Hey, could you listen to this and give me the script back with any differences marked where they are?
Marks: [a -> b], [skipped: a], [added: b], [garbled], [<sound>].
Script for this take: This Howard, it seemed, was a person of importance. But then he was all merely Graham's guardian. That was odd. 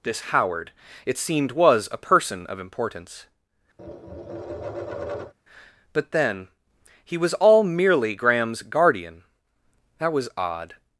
This Howard, it seemed, was a person of importance. [tap] But then he was all merely Graham's guardian. That was odd.